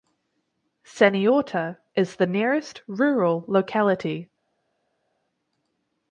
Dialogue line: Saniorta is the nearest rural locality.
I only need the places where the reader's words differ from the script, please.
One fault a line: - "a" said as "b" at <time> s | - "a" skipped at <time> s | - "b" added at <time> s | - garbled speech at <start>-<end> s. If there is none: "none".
none